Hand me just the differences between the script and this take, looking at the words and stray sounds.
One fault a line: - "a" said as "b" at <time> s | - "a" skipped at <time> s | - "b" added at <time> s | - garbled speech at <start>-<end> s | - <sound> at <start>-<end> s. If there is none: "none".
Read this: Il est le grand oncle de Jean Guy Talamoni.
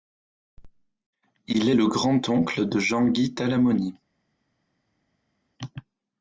none